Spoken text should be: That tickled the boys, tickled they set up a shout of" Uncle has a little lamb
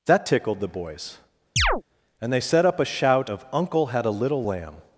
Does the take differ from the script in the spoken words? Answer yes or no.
yes